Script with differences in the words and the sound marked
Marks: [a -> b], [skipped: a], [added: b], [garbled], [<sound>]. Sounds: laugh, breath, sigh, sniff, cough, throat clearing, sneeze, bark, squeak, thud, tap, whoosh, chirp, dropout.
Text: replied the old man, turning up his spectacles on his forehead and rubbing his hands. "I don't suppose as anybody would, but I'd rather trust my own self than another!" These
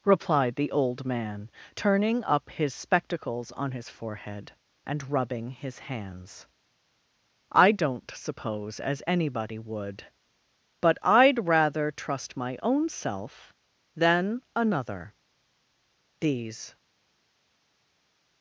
replied the old man, turning up his spectacles on his forehead and rubbing his hands. "I don't suppose as anybody would, but I'd rather trust my own self than another!" These